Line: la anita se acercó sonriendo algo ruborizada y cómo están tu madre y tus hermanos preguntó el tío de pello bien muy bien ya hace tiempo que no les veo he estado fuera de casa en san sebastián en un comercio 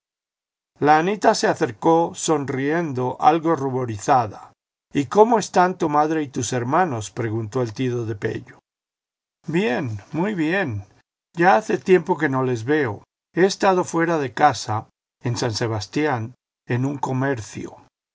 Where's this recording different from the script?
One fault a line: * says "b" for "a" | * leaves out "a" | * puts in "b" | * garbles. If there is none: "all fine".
all fine